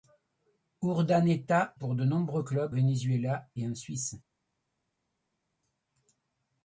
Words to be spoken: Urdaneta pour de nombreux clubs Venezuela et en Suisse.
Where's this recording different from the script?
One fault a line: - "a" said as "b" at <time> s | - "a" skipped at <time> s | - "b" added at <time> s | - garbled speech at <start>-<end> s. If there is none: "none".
none